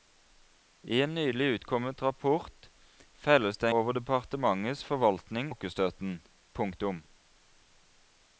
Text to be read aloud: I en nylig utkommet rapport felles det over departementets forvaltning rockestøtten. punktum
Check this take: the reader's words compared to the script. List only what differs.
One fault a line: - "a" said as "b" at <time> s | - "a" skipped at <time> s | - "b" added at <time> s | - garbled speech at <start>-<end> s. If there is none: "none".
none